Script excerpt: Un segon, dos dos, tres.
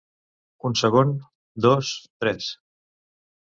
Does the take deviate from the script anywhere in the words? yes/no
yes